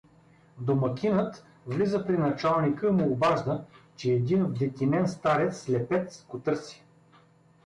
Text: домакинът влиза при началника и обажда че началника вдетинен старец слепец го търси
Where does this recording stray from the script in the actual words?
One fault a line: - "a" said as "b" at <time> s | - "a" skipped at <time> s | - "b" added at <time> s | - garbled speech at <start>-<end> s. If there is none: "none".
- "му" added at 2.9 s
- "началника" said as "един" at 4.1 s